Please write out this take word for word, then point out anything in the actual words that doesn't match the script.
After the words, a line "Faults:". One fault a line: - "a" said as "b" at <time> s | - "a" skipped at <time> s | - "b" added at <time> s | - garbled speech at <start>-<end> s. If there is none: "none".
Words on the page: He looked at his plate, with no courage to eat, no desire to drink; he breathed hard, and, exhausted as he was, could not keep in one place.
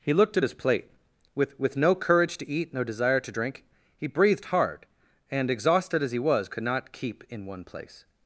He looked at his plate, with with no courage to eat, no desire to drink; he breathed hard, and, exhausted as he was, could not keep in one place.
Faults:
- "with" added at 1.6 s